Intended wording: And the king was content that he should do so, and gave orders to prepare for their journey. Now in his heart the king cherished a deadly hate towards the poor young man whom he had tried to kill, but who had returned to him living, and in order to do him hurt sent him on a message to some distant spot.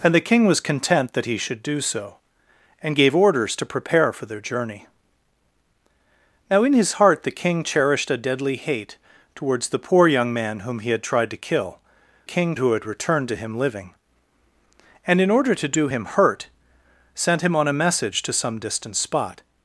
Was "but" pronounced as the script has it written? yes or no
no